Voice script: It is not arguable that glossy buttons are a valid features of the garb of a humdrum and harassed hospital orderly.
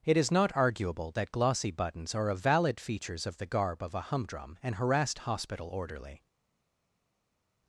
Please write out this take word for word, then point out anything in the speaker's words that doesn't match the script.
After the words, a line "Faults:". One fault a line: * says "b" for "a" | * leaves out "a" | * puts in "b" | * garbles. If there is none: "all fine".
It is not arguable that glossy buttons are a valid features of the garb of a humdrum and harassed hospital orderly.
Faults:
all fine